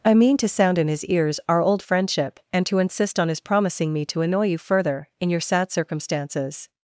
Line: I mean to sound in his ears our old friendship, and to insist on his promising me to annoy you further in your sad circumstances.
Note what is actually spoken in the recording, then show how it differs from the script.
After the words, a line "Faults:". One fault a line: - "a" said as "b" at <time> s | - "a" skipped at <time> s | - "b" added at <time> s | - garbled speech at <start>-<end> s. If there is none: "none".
I mean to sound in his ears our old friendship, and to insist on his promising me to annoy you further in your sad circumstances.
Faults:
none